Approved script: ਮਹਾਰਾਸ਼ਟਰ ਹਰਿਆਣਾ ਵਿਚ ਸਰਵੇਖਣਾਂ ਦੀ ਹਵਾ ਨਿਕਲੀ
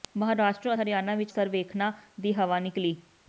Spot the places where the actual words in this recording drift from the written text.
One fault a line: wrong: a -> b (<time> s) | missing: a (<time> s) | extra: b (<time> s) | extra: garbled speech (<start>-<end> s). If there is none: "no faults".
no faults